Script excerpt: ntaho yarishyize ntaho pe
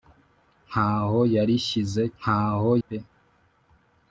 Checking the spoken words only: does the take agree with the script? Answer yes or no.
yes